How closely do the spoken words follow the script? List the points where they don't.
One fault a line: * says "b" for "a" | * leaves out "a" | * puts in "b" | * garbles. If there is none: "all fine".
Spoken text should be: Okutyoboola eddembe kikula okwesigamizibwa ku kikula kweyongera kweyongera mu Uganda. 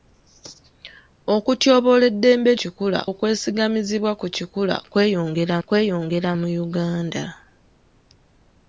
all fine